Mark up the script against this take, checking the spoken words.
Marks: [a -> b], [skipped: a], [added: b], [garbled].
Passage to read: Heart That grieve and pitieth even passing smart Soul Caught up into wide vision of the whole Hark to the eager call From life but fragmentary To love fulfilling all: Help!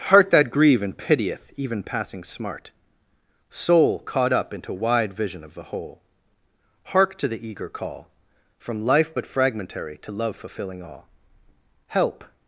Heart That grieve and pitieth even passing smart Soul Caught up into wide vision of the whole Hark to the eager call From life but fragmentary To love fulfilling all: Help!